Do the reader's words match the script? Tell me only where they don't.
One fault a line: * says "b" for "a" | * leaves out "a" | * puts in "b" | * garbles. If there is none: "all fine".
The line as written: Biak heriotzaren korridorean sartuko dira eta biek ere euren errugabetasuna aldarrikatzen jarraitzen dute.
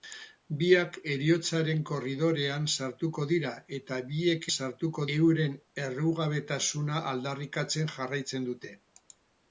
* says "sartuko" for "ere"